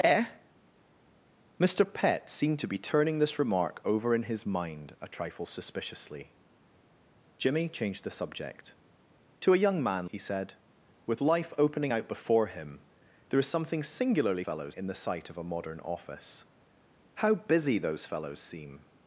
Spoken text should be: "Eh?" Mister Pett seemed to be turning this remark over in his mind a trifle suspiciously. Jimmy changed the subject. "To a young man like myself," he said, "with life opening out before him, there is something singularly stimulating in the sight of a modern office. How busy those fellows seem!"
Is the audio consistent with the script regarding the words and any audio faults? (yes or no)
no